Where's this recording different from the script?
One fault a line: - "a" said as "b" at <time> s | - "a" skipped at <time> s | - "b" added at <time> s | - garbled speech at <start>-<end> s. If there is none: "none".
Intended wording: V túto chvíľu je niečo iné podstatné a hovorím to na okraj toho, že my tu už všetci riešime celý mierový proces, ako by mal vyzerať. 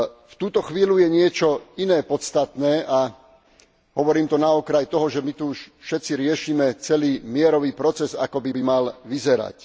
- "by" added at 8.5 s